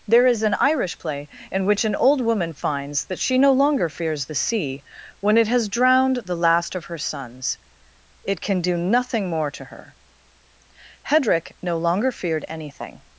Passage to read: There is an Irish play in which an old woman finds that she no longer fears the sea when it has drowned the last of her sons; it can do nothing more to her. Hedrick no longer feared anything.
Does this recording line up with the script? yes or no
yes